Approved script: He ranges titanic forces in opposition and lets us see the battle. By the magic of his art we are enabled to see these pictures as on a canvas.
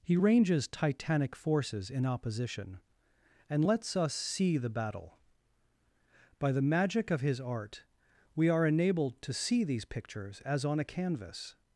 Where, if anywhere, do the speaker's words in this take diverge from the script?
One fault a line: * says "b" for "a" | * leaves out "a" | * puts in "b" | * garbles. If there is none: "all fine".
all fine